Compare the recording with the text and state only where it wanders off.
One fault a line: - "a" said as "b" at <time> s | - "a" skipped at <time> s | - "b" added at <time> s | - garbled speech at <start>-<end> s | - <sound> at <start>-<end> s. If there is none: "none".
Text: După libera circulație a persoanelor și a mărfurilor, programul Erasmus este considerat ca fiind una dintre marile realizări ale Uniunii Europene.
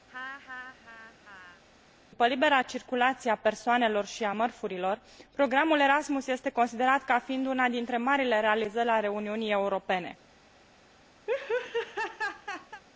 - laugh at 0.1-1.6 s
- laugh at 11.3-12.8 s